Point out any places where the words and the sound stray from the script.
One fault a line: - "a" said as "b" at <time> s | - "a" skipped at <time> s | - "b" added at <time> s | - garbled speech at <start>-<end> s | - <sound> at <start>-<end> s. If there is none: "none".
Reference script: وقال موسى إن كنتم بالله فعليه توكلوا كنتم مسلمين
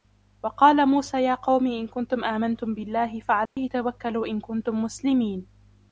- "يا قوم" added at 1.2 s
- "آمنتم" added at 2.2 s
- dropout at 3.5-3.6 s
- "إن" added at 4.3 s